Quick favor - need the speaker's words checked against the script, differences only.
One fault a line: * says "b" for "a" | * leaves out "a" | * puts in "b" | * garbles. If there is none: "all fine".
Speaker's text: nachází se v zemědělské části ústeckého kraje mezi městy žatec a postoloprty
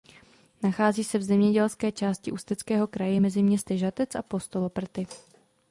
all fine